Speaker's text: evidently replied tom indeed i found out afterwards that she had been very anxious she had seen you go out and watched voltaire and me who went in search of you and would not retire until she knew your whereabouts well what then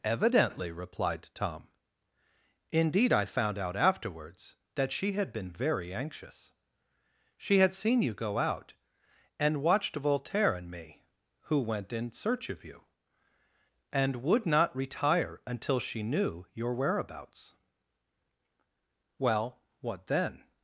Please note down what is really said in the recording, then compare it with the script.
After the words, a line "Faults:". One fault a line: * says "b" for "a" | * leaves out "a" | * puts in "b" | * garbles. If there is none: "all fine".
evidently replied tom indeed i found out afterwards that she had been very anxious she had seen you go out and watched voltaire and me who went in search of you and would not retire until she knew your whereabouts well what then
Faults:
all fine